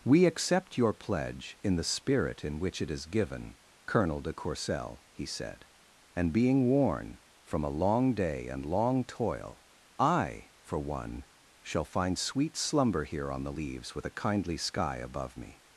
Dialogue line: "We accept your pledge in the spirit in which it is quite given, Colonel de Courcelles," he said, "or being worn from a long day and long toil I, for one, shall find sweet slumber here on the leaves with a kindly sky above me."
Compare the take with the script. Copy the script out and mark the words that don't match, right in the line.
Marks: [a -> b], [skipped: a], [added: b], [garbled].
"We accept your pledge in the spirit in which it is [skipped: quite] given, Colonel de Courcelles," he said, ["or -> and] being worn from a long day and long toil I, for one, shall find sweet slumber here on the leaves with a kindly sky above me."